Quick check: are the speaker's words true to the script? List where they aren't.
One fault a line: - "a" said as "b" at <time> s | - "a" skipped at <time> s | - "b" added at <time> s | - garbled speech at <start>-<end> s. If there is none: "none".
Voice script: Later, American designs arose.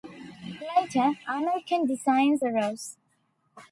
none